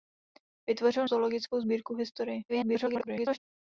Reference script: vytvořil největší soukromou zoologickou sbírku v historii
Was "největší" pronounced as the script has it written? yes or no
no